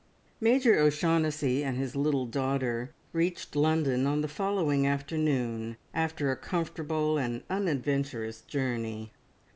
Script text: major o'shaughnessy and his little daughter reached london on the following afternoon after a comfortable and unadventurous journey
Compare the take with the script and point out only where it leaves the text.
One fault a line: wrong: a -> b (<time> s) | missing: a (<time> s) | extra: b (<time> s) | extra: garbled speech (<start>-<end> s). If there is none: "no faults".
no faults